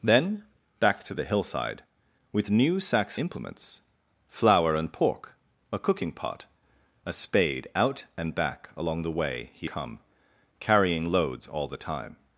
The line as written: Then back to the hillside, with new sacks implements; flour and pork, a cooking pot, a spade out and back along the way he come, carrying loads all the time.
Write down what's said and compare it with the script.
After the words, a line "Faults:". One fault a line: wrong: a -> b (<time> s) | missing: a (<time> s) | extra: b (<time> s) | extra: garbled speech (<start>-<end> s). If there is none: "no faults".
Then back to the hillside, with new sacks implements; flour and pork, a cooking pot, a spade out and back along the way he come, carrying loads all the time.
Faults:
no faults